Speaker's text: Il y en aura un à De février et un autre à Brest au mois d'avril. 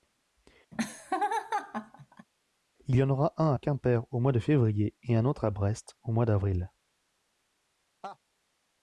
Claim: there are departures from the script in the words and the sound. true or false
true